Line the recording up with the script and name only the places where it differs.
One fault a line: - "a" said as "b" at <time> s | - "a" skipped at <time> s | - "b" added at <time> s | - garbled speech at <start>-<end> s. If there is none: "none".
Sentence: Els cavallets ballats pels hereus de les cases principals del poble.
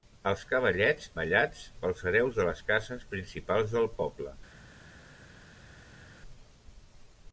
none